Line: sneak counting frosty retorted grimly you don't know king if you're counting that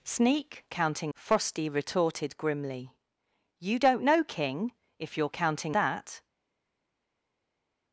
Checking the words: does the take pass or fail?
pass